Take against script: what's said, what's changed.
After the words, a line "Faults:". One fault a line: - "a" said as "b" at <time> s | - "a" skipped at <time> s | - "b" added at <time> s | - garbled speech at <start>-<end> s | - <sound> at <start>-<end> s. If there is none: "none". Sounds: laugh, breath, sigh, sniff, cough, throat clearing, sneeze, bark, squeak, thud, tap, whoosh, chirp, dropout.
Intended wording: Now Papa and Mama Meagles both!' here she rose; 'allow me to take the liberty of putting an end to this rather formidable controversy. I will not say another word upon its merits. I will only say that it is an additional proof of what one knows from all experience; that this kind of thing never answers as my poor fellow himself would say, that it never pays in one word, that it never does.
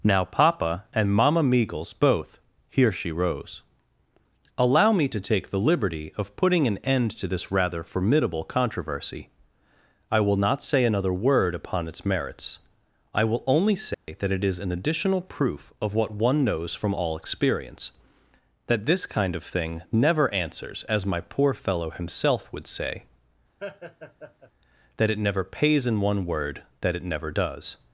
Now Papa and Mama Meagles both!' here she rose; 'allow me to take the liberty of putting an end to this rather formidable controversy. I will not say another word upon its merits. I will only say that it is an additional proof of what one knows from all experience; that this kind of thing never answers as my poor fellow himself would say, that it never pays in one word, that it never does.
Faults:
- dropout at 13.9-14.1 s
- laugh at 23.6-24.5 s